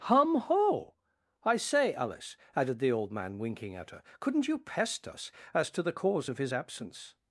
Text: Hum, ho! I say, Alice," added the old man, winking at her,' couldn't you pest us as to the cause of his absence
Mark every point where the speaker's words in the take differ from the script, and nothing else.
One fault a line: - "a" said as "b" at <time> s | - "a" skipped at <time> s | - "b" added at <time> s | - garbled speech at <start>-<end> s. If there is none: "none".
none